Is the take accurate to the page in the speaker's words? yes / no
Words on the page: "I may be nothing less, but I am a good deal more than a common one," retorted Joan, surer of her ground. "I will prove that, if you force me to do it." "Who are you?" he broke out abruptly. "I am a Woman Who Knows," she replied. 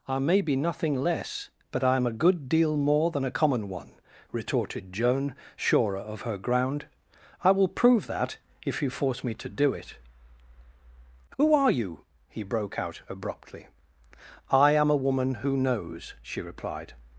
yes